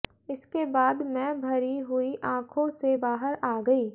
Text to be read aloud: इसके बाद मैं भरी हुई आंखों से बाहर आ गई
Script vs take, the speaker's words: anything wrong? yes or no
no